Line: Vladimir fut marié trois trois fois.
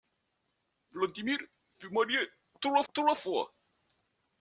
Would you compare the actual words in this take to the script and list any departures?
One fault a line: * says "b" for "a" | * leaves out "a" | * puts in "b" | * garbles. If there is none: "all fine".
all fine